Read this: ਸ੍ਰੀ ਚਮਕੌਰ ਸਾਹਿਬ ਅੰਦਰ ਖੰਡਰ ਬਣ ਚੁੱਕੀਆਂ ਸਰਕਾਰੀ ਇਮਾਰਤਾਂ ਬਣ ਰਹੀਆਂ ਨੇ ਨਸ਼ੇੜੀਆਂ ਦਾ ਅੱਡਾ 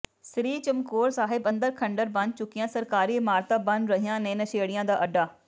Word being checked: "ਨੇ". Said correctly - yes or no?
yes